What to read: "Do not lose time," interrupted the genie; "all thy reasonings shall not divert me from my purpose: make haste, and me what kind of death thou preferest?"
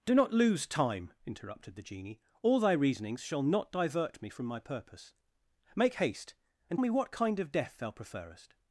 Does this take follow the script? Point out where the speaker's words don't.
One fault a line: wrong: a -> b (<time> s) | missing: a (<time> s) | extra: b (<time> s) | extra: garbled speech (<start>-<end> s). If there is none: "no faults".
no faults